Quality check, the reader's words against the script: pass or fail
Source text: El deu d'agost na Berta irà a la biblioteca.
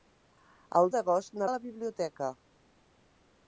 fail